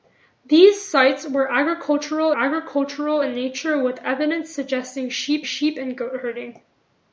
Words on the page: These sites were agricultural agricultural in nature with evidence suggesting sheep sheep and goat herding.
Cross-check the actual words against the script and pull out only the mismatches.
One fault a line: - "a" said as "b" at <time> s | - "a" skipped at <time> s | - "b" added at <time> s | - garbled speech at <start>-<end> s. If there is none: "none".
none